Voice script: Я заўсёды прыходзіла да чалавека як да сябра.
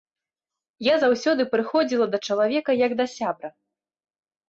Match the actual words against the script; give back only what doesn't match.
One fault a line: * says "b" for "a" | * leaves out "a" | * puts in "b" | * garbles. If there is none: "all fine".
all fine